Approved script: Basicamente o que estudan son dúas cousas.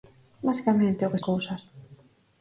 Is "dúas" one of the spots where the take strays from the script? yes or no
yes